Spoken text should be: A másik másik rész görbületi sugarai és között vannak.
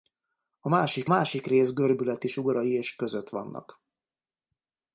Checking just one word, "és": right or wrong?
right